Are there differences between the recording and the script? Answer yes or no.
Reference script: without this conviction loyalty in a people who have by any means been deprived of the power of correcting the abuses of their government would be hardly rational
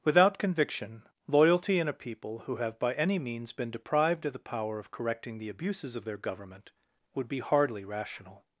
yes